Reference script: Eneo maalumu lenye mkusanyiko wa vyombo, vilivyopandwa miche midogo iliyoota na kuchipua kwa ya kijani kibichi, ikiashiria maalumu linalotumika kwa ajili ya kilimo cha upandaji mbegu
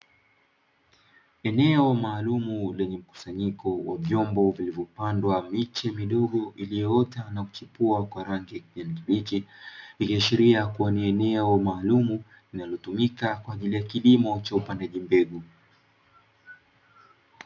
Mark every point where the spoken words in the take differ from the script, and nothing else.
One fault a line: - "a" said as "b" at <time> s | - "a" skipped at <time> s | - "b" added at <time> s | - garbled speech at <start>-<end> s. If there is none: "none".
- "rangi" added at 8.2 s
- "kuwa ni eneo" added at 10.7 s